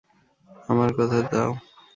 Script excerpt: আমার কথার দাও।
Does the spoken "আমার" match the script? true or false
true